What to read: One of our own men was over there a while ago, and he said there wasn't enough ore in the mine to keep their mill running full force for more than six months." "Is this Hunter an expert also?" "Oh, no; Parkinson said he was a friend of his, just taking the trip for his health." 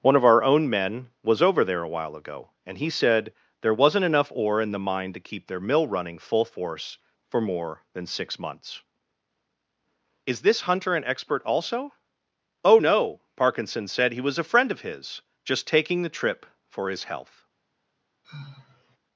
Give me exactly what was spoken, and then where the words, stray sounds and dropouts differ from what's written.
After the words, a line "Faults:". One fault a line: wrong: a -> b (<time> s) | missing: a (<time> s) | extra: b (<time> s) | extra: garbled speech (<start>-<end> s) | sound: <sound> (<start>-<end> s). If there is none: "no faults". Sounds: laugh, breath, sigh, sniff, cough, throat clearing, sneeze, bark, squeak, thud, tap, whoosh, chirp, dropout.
One of our own men was over there a while ago, and he said there wasn't enough ore in the mine to keep their mill running full force for more than six months." "Is this Hunter an expert also?" "Oh, no; Parkinson said he was a friend of his, just taking the trip for his health."
Faults:
sound: sigh (18.2-19.0 s)